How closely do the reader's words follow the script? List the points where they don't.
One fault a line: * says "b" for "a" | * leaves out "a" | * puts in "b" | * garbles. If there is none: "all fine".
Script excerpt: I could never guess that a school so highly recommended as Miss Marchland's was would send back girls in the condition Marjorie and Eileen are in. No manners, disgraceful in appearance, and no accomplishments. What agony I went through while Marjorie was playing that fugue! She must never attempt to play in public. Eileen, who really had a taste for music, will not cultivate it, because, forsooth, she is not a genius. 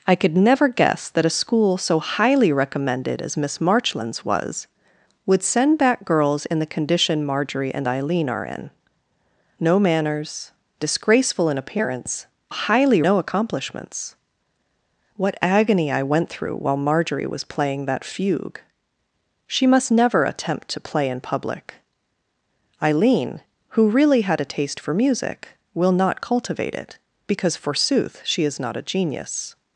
* says "highly" for "and"